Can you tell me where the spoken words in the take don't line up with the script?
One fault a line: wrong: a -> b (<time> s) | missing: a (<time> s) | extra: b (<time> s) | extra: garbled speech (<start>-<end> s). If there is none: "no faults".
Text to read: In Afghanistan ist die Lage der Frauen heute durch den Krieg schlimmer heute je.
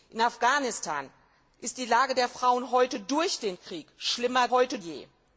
no faults